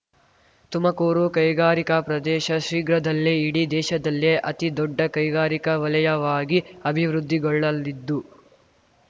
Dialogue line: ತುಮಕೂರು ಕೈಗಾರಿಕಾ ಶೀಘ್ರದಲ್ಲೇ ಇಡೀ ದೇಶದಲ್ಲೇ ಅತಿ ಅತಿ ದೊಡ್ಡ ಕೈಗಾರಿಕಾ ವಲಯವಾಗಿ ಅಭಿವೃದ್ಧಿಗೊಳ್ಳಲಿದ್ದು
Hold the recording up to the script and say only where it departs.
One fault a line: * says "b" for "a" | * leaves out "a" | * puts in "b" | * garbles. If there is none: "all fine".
* puts in "ಪ್ರದೇಶ"
* leaves out "ಅತಿ"